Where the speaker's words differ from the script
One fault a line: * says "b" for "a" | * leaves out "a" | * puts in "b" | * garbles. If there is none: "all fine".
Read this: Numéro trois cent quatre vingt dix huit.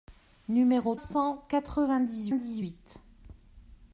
* leaves out "trois"
* puts in "dix"